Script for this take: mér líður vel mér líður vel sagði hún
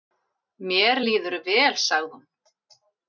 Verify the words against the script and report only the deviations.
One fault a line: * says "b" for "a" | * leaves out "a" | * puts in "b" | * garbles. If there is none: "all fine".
* leaves out "mér líður vel"